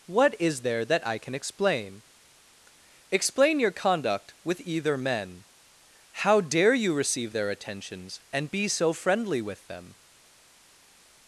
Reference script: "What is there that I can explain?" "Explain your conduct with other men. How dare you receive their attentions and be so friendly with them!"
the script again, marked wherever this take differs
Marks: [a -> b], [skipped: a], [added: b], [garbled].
"What is there that I can explain?" "Explain your conduct with [other -> either] men. How dare you receive their attentions and be so friendly with them!"